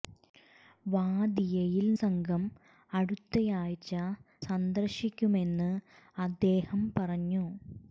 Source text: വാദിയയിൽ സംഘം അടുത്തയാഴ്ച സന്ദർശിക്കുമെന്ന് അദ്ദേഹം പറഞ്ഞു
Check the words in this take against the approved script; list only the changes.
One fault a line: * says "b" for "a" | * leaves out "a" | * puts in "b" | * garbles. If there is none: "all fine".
all fine